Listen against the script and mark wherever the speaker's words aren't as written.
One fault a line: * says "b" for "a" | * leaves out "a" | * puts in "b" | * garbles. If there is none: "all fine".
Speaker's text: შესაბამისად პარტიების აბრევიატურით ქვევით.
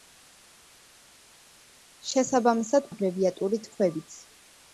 * leaves out "პარტიების"